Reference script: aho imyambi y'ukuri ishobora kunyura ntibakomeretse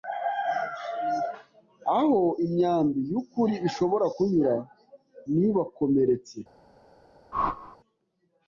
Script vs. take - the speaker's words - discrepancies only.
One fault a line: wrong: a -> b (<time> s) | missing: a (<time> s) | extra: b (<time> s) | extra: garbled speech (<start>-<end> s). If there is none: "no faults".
no faults